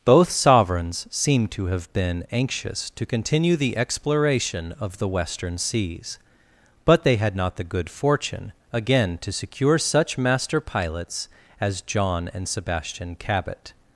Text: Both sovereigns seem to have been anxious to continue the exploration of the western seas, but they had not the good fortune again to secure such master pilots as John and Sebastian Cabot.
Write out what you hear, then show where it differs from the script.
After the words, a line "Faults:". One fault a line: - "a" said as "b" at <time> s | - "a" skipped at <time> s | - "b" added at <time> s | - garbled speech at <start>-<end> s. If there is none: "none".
Both sovereigns seem to have been anxious to continue the exploration of the western seas, but they had not the good fortune again to secure such master pilots as John and Sebastian Cabot.
Faults:
none